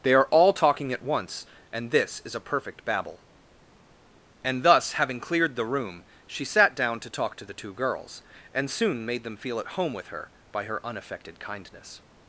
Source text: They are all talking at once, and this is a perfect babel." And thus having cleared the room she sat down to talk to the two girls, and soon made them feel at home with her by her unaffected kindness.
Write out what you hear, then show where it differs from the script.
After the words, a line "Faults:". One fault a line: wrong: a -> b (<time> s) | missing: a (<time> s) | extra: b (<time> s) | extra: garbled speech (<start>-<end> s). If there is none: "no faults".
They are all talking at once, and this is a perfect babel." And thus having cleared the room she sat down to talk to the two girls, and soon made them feel at home with her by her unaffected kindness.
Faults:
no faults